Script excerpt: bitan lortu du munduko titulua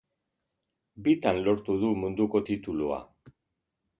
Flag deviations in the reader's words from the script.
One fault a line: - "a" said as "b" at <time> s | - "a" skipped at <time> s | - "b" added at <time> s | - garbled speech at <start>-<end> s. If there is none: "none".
none